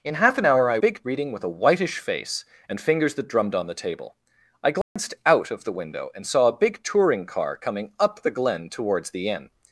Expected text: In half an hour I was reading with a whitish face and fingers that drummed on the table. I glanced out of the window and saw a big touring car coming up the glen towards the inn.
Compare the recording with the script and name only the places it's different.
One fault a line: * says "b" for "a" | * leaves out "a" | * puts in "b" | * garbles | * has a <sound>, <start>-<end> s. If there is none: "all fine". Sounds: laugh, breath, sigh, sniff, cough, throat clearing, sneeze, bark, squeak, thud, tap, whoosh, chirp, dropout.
* says "big" for "was"
* has a dropout, 4.8-5.0 s